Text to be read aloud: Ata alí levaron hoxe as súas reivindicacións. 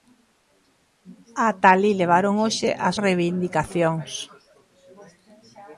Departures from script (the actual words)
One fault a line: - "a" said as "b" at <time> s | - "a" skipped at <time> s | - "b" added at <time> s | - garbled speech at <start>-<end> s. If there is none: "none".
- "súas" skipped at 3.0 s